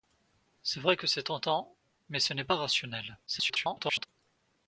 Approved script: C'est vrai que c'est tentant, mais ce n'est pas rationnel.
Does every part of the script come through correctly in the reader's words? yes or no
no